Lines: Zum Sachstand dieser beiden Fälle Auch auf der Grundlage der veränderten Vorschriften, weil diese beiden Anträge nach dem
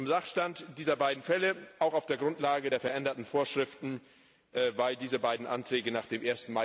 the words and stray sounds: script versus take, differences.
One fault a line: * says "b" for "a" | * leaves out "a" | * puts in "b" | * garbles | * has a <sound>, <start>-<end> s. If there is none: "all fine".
all fine